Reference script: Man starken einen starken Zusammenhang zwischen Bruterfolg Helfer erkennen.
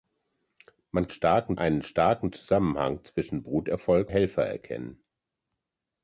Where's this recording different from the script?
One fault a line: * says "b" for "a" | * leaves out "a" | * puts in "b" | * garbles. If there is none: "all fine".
all fine